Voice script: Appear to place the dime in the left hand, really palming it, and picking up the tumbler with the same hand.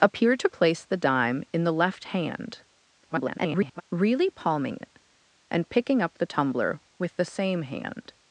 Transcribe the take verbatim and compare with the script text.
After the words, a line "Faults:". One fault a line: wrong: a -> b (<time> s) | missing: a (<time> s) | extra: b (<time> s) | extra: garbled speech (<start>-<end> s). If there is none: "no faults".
Appear to place the dime in the left hand, [garbled] really palming it, and picking up the tumbler with the same hand.
Faults:
extra: garbled speech (3.0-3.8 s)